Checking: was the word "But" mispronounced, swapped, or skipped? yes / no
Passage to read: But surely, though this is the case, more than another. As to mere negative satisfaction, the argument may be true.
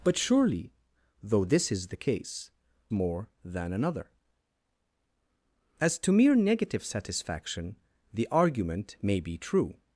no